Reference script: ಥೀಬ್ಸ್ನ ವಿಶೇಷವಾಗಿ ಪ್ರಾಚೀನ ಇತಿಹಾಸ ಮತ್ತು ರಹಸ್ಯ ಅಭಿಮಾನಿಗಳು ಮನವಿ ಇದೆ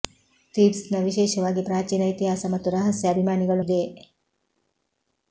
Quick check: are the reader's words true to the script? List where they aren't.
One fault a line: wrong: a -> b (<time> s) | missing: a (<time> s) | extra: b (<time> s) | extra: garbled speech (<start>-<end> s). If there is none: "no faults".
missing: ಮನವಿ (3.6 s)